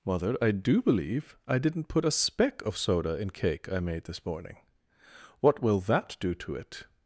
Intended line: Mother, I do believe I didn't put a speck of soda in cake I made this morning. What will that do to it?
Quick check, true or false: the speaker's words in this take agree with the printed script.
true